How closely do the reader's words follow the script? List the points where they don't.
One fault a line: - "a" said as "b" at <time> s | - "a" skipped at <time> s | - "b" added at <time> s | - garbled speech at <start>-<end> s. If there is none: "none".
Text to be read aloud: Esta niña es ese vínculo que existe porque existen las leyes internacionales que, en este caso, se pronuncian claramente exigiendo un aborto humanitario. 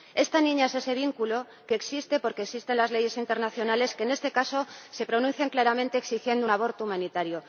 none